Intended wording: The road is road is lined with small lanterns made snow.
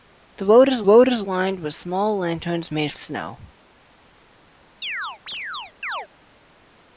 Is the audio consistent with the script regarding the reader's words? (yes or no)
yes